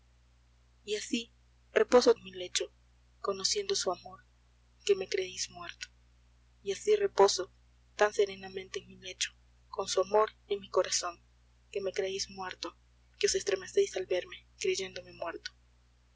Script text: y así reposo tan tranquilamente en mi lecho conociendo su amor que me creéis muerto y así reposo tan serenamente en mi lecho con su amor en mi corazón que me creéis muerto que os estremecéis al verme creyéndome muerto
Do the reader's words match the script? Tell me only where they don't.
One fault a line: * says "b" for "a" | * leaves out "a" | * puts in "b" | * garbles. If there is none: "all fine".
* leaves out "tan tranquilamente"